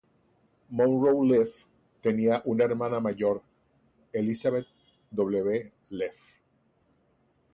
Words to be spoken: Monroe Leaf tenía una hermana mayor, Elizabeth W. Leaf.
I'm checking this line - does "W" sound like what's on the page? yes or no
yes